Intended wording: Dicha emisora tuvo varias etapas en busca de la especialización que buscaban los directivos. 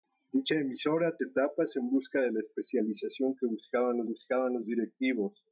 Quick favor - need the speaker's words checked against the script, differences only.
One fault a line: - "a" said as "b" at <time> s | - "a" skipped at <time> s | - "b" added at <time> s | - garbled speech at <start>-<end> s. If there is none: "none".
- "tuvo varias" skipped at 1.2 s
- "buscaban los" added at 4.0 s